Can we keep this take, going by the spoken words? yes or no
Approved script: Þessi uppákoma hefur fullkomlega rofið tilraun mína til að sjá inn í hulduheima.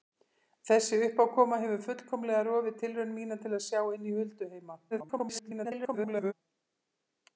no